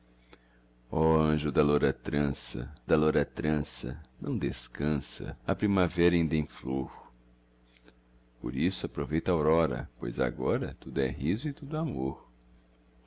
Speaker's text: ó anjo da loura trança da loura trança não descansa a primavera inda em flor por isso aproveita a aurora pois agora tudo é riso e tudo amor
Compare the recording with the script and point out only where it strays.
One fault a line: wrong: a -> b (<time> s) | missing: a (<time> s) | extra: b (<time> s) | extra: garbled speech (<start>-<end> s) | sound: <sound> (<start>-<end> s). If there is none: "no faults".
no faults